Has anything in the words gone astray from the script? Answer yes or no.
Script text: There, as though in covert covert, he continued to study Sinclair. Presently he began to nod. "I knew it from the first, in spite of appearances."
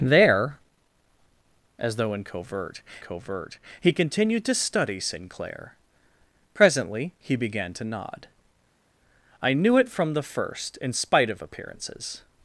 no